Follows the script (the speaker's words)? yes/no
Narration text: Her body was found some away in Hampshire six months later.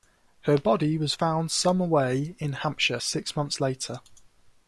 yes